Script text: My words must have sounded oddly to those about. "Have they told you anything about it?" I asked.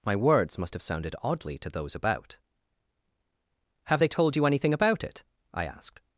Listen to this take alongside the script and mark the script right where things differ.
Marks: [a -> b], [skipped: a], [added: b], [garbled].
My words must have sounded oddly to those about. "Have they told you anything about it?" I asked.